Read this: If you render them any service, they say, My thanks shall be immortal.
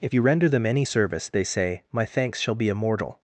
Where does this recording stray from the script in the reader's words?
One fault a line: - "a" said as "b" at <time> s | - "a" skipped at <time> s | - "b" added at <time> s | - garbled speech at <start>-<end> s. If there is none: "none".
none